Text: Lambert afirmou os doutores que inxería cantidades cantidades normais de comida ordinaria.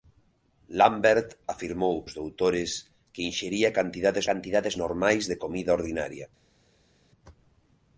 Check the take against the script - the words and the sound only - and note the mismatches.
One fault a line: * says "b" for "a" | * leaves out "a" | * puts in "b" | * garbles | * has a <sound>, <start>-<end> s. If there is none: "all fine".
all fine